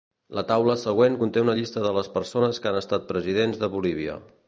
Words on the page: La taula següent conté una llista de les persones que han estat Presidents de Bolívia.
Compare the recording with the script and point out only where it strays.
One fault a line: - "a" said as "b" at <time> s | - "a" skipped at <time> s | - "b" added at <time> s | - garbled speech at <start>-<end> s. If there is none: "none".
none